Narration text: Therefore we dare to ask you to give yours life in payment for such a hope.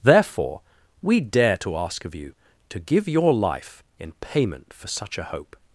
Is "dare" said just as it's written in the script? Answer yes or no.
yes